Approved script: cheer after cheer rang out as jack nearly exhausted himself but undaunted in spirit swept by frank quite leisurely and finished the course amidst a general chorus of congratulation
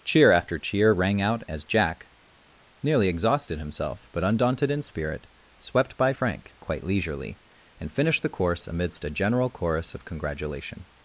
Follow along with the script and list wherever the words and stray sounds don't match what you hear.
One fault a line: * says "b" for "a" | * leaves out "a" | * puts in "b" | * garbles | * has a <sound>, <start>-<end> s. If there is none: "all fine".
all fine